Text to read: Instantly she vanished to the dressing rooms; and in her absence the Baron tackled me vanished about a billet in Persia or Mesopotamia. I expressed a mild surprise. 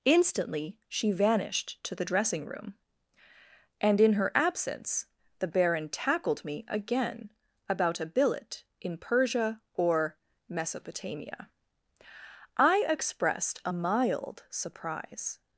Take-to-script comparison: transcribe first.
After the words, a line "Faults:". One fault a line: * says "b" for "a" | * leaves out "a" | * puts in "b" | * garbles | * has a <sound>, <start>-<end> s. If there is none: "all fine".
Instantly she vanished to the dressing room; and in her absence the Baron tackled me again about a billet in Persia or Mesopotamia. I expressed a mild surprise.
Faults:
* says "room" for "rooms"
* says "again" for "vanished"